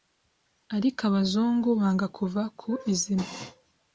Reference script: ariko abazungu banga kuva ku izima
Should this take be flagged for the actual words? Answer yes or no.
no